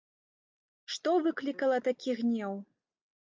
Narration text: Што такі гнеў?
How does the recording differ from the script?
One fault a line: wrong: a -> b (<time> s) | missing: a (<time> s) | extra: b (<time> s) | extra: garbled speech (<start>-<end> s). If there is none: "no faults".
extra: выклікала (1.3 s)